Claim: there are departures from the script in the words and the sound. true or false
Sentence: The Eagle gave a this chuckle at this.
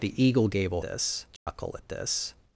true